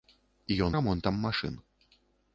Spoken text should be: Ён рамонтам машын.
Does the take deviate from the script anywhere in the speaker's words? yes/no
no